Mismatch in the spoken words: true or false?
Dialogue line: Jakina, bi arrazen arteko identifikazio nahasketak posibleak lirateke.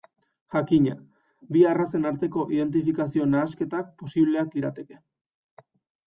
false